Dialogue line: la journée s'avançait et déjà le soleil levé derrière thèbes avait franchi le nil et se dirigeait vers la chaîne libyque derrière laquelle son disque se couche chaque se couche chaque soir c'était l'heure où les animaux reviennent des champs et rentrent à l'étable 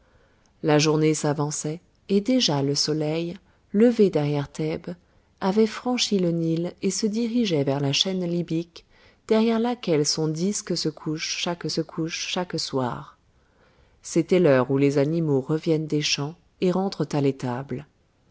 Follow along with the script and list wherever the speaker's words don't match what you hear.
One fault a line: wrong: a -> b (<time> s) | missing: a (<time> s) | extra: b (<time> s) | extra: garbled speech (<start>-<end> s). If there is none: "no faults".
no faults